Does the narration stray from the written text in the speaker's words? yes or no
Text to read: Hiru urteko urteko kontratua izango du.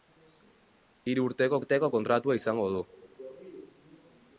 no